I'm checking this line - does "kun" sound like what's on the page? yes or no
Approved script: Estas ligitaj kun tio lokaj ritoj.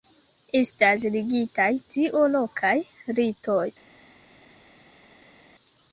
no